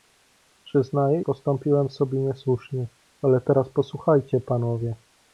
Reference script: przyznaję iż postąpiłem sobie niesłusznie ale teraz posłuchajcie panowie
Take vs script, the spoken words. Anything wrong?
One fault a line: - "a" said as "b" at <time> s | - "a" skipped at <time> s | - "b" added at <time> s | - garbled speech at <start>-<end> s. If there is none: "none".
- "iż" skipped at 1.2 s